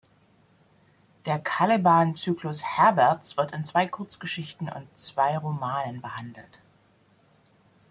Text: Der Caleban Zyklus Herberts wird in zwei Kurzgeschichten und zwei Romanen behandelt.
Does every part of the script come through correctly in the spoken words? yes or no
yes